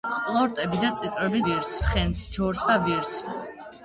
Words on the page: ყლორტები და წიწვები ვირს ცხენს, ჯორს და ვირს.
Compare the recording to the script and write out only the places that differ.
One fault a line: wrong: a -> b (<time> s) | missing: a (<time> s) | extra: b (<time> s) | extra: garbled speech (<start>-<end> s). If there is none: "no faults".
no faults